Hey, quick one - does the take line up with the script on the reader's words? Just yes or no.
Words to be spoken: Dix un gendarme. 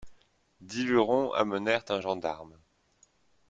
no